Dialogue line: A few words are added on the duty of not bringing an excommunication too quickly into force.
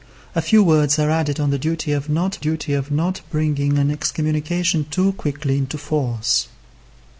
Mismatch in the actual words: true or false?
true